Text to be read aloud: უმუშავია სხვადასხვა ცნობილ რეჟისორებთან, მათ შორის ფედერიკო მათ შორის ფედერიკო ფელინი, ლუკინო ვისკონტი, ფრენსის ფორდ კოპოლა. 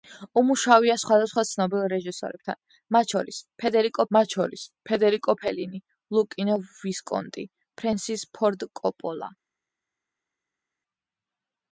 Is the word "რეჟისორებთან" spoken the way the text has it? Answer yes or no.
yes